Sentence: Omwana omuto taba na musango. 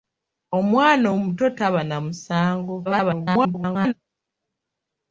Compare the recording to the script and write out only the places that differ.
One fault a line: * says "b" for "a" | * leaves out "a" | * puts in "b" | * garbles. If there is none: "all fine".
* garbles